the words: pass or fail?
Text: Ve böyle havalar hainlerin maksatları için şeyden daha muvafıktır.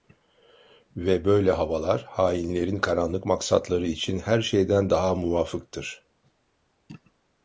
fail